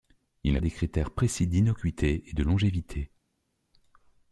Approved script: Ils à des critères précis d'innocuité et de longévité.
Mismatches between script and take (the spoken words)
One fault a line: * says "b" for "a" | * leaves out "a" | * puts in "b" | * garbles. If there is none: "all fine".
all fine